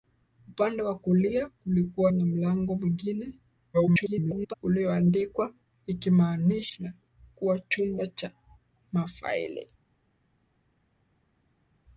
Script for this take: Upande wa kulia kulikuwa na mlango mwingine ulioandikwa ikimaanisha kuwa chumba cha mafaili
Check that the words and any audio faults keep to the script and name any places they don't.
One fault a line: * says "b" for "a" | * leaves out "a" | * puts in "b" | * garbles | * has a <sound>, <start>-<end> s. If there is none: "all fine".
* garbles